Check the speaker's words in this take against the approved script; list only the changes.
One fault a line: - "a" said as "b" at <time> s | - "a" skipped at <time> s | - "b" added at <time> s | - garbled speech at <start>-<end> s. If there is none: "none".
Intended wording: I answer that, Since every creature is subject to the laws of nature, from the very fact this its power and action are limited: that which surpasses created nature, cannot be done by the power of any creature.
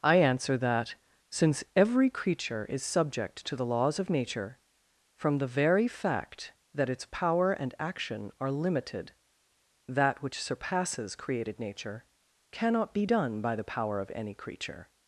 - "this" said as "that" at 6.7 s